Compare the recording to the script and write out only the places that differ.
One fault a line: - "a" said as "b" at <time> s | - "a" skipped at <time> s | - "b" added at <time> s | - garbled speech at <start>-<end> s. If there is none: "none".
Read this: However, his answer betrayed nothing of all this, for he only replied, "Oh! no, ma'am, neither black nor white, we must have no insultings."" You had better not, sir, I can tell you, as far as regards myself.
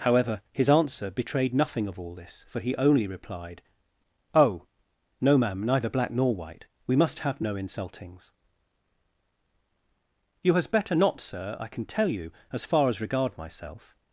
- "had" said as "has" at 10.5 s
- "regards" said as "regard" at 13.0 s